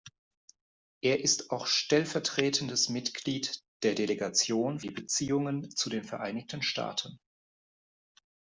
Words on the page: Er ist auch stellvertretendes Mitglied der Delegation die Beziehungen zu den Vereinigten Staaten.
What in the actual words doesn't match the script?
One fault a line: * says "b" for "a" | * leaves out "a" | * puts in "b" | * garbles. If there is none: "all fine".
all fine